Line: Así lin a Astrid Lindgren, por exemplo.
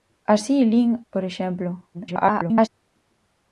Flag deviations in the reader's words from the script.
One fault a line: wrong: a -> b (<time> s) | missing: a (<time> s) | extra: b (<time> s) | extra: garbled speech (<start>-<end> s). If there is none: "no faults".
missing: a Astrid Lindgren (1.0 s)
extra: garbled speech (1.9-2.7 s)